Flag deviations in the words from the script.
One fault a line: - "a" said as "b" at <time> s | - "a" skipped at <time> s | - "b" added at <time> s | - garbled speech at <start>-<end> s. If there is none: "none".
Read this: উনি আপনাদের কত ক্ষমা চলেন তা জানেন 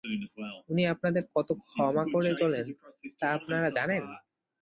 - "করে" added at 2.1 s
- "আপনারা" added at 3.4 s